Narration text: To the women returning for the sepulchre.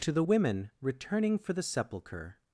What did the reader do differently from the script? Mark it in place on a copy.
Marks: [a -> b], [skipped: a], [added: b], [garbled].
To the women returning for the sepulchre.